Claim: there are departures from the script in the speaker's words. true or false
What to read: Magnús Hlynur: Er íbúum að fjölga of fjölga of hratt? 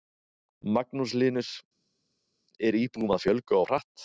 true